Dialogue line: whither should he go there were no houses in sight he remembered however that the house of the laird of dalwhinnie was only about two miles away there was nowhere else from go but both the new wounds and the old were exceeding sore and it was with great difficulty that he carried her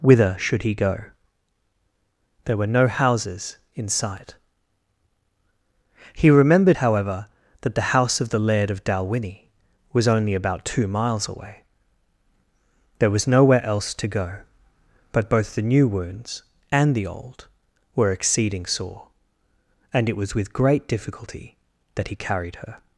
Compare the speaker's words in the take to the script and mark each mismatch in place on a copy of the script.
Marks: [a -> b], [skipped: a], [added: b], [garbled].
whither should he go there were no houses in sight he remembered however that the house of the laird of dalwhinnie was only about two miles away there was nowhere else [from -> to] go but both the new wounds and the old were exceeding sore and it was with great difficulty that he carried her